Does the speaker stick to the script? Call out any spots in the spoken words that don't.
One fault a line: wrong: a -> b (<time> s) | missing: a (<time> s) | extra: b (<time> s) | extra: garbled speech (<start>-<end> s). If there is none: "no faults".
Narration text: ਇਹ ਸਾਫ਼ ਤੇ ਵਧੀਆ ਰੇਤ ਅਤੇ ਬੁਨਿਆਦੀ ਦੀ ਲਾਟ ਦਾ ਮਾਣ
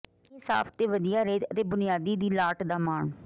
no faults